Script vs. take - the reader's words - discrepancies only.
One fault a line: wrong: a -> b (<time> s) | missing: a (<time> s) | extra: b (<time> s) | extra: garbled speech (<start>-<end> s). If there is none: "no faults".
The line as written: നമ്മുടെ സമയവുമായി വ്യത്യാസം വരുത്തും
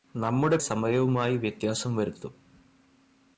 no faults